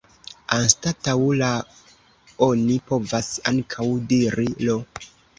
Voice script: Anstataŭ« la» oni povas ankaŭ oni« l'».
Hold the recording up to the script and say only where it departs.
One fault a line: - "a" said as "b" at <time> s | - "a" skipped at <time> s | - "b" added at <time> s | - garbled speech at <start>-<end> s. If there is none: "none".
- "oni" said as "diri" at 4.2 s